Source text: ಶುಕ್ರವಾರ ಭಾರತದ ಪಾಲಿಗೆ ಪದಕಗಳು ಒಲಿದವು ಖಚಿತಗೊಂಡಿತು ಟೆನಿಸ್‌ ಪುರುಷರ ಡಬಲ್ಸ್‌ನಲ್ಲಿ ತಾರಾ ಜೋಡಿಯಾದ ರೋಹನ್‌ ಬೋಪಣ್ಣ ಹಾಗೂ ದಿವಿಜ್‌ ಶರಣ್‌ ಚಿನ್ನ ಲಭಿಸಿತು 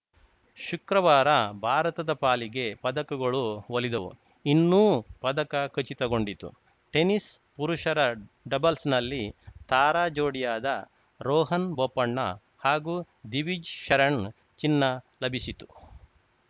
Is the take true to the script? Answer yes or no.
no